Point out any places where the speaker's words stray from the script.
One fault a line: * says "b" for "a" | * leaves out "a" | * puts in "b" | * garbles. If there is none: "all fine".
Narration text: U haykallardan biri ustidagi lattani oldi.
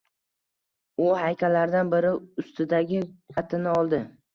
all fine